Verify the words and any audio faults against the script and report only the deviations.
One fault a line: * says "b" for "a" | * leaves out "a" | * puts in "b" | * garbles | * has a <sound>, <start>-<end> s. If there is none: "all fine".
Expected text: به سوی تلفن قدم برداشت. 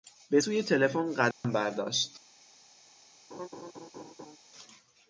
* has a dropout, 1.3-1.4 s
* has a laugh, 3.3-4.4 s